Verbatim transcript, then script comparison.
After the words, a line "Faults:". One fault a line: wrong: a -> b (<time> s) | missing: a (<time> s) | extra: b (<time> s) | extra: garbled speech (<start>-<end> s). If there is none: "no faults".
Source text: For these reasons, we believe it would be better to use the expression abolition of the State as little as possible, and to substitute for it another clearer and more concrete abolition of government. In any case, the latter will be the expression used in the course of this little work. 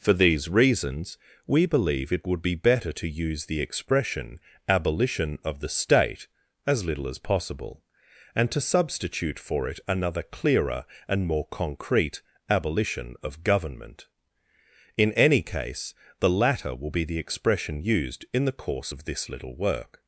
For these reasons, we believe it would be better to use the expression abolition of the State as little as possible, and to substitute for it another clearer and more concrete abolition of government. In any case, the latter will be the expression used in the course of this little work.
Faults:
no faults